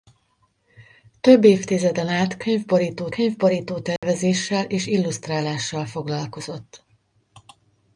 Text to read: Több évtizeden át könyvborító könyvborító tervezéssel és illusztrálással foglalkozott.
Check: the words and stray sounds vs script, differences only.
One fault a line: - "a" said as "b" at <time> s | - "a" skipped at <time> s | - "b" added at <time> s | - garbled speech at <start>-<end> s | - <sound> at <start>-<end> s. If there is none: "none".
- dropout at 4.0-4.0 s